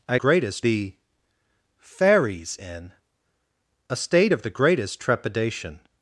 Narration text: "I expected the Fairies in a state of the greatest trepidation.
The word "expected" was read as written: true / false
false